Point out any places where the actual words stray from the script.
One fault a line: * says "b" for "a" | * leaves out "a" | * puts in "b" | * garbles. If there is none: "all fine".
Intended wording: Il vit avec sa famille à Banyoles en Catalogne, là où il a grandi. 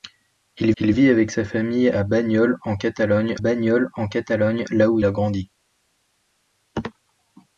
* puts in "il"
* puts in "Banyoles en Catalogne"
* leaves out "il"